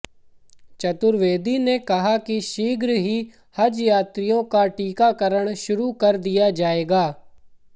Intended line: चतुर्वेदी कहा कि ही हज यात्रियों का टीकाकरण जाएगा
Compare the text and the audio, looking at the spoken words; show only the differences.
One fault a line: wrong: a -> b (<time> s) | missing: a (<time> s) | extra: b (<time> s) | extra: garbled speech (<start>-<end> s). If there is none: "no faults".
extra: ने (1.6 s)
extra: शीघ्र (2.4 s)
extra: शुरू कर दिया (5.7 s)